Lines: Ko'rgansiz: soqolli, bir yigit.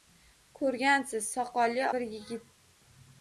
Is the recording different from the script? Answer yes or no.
no